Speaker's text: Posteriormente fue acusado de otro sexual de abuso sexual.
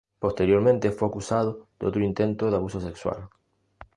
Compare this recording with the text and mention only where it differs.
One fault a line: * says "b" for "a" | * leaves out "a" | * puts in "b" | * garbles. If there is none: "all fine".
* says "intento" for "sexual"